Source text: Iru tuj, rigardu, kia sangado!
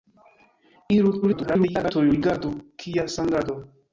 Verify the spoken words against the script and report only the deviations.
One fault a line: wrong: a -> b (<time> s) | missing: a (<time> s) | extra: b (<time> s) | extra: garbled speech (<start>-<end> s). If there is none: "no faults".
extra: garbled speech (1.2-1.9 s)